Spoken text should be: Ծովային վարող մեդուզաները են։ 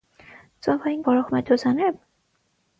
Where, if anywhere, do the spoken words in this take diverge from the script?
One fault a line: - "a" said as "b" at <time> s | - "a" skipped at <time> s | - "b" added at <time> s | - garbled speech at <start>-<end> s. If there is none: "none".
none